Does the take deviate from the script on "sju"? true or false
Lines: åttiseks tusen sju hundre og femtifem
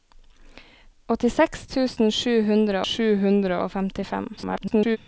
false